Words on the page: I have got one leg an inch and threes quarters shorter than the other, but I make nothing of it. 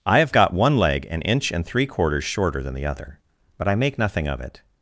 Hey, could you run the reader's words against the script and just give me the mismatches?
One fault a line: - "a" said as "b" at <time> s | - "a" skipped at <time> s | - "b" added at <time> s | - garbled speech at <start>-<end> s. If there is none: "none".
- "threes" said as "three" at 1.7 s